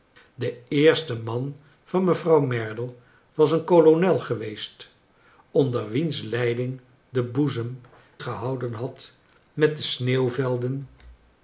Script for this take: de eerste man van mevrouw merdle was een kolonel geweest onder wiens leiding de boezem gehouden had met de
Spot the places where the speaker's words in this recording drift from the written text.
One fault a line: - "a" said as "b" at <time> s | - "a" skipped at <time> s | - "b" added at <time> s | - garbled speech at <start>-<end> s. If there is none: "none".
none